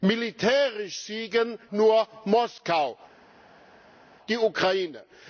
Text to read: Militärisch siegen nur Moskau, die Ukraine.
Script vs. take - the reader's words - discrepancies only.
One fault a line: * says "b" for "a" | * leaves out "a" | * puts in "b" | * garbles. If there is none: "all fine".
all fine